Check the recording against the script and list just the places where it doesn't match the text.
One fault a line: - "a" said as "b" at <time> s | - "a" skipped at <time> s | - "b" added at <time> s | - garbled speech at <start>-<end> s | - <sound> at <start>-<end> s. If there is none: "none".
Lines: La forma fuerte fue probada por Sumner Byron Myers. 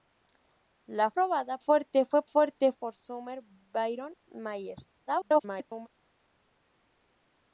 - "forma" said as "probada" at 1.1 s
- "probada" said as "fuerte" at 2.2 s
- garbled speech at 5.1-5.9 s